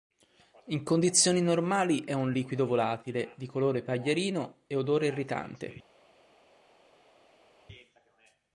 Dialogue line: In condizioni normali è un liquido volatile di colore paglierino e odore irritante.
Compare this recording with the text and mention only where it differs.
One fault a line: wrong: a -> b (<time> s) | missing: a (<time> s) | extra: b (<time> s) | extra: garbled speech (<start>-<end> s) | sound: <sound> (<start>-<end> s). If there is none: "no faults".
no faults